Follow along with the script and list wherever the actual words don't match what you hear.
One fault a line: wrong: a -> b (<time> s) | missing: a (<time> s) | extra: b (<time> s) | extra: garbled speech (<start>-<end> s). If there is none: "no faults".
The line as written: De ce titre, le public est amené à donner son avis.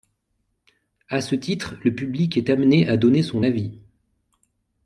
wrong: De -> À (1.1 s)